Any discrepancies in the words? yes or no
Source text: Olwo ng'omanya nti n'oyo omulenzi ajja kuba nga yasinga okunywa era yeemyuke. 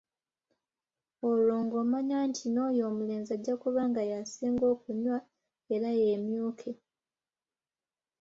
no